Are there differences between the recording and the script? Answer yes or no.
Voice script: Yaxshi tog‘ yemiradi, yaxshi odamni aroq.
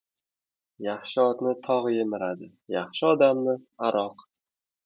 yes